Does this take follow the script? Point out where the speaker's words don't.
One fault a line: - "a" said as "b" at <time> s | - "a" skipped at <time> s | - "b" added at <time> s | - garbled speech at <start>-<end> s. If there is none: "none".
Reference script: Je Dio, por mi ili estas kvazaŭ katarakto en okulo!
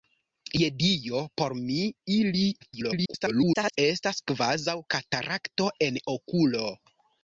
- garbled speech at 2.6-3.8 s